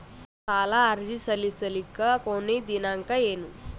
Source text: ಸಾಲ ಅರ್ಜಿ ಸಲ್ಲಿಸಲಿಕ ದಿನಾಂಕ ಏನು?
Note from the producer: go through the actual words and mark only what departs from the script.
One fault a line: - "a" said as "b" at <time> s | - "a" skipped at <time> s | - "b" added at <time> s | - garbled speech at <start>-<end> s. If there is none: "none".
- "ಕೊನಿ" added at 2.2 s